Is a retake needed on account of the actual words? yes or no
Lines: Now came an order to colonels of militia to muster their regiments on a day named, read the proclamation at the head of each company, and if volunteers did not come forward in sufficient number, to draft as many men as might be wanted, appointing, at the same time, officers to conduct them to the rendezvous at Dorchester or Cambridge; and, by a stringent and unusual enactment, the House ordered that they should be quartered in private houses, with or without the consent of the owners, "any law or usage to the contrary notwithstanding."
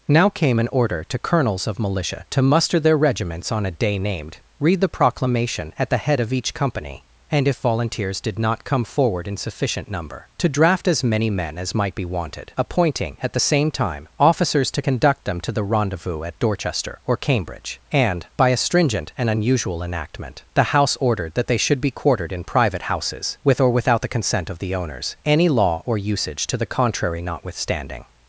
no